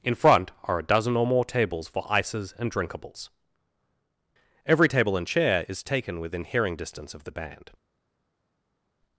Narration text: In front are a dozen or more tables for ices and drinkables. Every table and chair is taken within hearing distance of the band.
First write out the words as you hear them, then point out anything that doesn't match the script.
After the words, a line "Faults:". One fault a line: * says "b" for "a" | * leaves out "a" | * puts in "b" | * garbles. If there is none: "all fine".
In front are a dozen or more tables for ices and drinkables. Every table and chair is taken within hearing distance of the band.
Faults:
all fine